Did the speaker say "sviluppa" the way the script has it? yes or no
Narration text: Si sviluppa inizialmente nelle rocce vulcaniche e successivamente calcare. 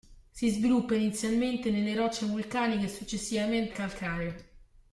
yes